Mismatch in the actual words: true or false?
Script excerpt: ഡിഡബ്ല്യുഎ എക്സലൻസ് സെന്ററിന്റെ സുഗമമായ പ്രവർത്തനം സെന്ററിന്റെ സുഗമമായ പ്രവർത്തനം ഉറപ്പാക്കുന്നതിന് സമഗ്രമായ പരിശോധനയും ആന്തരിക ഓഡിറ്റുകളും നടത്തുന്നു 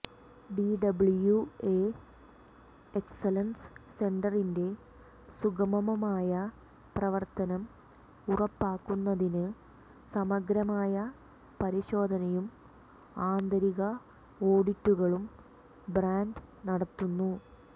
true